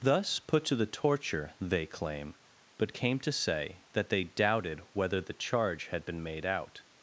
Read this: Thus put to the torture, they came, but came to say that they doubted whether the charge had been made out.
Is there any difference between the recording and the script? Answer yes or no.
yes